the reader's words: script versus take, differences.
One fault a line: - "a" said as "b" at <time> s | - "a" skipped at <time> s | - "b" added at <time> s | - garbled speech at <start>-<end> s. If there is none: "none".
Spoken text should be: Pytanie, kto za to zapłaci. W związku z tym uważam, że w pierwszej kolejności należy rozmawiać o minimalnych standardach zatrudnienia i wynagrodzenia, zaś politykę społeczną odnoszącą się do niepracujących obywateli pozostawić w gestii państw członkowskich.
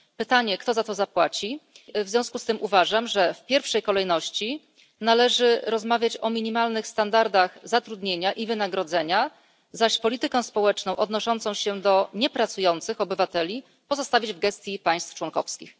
none